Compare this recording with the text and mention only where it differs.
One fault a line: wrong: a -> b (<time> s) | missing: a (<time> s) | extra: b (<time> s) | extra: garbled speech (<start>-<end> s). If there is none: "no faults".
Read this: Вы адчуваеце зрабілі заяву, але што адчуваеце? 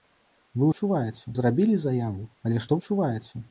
no faults